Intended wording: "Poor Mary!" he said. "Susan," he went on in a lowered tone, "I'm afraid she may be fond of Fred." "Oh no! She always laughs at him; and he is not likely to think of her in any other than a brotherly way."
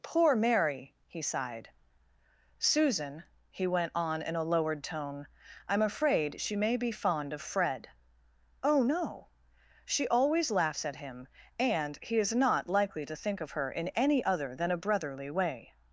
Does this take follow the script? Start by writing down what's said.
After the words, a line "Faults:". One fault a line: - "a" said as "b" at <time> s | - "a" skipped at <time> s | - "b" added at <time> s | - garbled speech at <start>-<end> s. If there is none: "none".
"Poor Mary!" he sighed. "Susan," he went on in a lowered tone, "I'm afraid she may be fond of Fred." "Oh no! She always laughs at him; and he is not likely to think of her in any other than a brotherly way."
Faults:
- "said" said as "sighed" at 1.2 s